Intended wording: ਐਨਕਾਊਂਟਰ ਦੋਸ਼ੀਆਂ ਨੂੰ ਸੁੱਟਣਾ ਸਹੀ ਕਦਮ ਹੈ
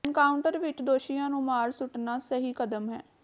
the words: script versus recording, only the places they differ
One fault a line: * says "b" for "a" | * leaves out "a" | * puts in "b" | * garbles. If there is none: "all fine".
* puts in "ਵਿਚ"
* puts in "ਮਾਰ"